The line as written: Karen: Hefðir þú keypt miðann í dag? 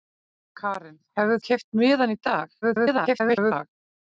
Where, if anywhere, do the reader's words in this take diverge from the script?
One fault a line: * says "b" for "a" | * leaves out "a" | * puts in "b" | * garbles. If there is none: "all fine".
* leaves out "þú"
* garbles